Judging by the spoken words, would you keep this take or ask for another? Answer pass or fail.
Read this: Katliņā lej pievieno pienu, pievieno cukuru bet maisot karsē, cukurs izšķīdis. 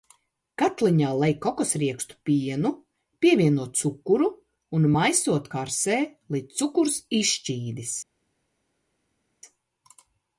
fail